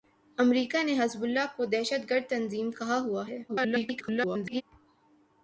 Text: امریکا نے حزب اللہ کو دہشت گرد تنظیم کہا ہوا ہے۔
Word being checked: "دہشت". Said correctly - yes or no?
yes